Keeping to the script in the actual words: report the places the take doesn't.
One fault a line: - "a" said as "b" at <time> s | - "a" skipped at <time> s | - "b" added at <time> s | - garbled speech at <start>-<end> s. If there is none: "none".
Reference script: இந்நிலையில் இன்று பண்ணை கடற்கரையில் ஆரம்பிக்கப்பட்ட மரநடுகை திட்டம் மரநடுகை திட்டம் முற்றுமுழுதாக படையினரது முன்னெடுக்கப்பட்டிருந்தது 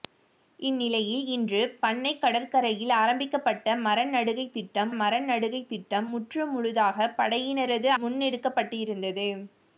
none